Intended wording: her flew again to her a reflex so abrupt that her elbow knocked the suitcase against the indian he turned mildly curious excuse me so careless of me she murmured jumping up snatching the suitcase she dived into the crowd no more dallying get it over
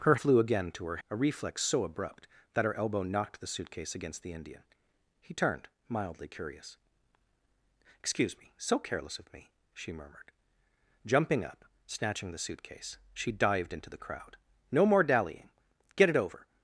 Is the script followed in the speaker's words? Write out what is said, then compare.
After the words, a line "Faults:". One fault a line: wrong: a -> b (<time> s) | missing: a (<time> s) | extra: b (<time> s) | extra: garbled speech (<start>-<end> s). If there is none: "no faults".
her flew again to her a reflex so abrupt that her elbow knocked the suitcase against the indian he turned mildly curious excuse me so careless of me she murmured jumping up snatching the suitcase she dived into the crowd no more dallying get it over
Faults:
no faults